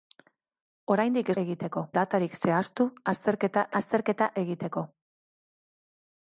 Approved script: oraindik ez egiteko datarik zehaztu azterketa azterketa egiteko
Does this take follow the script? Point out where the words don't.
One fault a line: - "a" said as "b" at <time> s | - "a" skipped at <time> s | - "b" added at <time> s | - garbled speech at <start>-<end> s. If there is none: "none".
none